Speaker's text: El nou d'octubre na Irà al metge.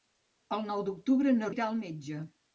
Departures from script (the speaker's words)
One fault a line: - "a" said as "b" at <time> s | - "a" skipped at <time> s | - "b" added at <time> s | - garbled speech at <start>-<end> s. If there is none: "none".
none